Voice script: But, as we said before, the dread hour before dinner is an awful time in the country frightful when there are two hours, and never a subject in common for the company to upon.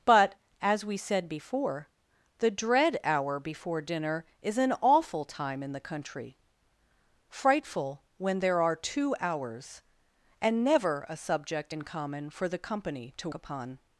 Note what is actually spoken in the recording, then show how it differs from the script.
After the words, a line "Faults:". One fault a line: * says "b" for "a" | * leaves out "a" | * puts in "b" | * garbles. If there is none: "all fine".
But, as we said before, the dread hour before dinner is an awful time in the country frightful when there are two hours, and never a subject in common for the company to upon.
Faults:
all fine